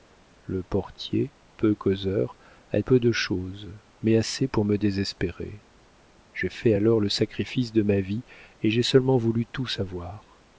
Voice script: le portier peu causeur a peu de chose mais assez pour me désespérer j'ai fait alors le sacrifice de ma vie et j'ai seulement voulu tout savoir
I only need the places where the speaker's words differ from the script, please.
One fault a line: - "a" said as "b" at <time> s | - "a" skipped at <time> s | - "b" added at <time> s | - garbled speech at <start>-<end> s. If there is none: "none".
none